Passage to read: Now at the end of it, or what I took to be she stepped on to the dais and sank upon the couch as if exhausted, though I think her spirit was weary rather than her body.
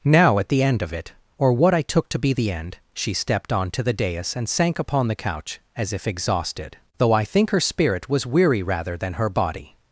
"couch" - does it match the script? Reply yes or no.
yes